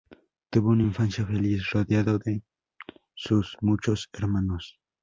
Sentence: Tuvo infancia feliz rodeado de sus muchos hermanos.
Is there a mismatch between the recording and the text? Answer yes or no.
yes